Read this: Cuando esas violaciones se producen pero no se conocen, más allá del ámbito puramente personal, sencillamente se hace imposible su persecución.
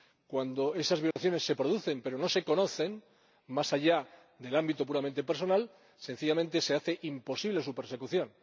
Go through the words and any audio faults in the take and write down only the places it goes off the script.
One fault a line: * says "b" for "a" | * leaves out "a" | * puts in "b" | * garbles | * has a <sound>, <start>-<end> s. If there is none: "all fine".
* has a dropout, 1.1-1.2 s